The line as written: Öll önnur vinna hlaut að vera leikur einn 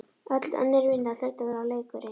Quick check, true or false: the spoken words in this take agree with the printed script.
true